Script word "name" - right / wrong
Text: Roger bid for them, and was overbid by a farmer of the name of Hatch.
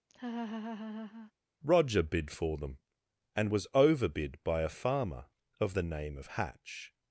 right